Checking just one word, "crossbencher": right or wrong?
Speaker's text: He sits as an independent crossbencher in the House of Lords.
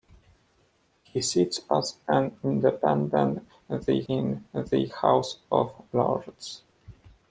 wrong